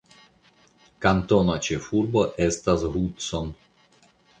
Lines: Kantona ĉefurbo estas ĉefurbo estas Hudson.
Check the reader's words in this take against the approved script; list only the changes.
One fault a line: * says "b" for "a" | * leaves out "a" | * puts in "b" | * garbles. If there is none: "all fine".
* leaves out "ĉefurbo estas"